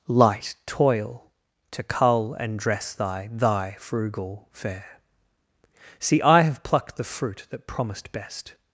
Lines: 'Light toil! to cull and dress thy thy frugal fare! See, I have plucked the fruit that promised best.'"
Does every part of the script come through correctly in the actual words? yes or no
yes